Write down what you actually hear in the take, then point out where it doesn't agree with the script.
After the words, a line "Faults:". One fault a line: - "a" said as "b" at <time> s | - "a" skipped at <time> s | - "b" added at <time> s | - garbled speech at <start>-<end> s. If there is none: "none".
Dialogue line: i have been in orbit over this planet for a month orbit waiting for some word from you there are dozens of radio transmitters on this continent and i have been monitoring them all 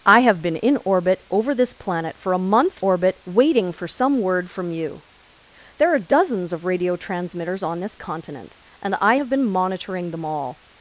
i have been in orbit over this planet for a month orbit waiting for some word from you there are dozens of radio transmitters on this continent and i have been monitoring them all
Faults:
none